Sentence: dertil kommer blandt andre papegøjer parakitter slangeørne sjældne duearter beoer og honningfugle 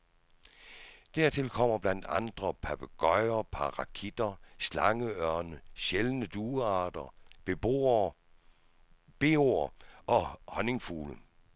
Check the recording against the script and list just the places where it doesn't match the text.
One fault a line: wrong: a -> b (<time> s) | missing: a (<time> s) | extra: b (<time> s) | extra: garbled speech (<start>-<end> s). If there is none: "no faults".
no faults